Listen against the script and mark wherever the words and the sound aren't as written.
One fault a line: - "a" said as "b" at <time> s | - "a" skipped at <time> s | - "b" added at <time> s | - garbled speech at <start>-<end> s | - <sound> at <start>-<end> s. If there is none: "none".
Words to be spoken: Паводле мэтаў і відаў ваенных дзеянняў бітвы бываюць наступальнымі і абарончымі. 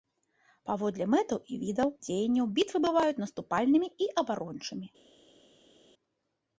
- "ваенных" skipped at 1.9 s